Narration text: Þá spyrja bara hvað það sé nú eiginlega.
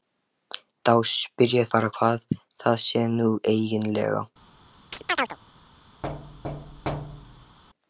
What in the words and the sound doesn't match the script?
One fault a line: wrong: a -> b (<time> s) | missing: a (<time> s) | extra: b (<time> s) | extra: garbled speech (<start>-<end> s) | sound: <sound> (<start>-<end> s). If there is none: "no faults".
sound: chirp (4.9-5.4 s)
sound: thud (6.0-7.6 s)